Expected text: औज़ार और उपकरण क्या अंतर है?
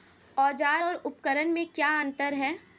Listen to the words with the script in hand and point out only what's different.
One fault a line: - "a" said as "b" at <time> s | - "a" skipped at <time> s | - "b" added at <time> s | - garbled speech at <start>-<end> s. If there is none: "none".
- "में" added at 1.5 s